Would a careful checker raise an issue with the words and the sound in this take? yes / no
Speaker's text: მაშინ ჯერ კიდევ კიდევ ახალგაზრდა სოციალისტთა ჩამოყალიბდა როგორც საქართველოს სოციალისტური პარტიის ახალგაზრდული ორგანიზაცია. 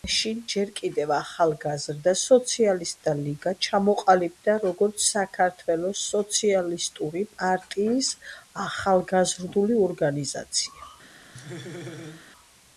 yes